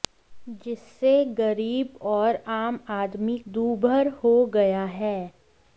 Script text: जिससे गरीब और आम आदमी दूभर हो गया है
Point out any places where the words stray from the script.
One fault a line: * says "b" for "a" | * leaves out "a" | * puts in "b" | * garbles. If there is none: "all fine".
all fine